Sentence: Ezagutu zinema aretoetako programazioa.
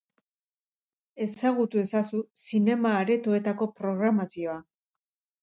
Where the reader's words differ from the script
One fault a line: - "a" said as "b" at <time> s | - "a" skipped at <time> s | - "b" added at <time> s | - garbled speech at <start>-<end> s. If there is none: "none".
- "ezazu" added at 1.8 s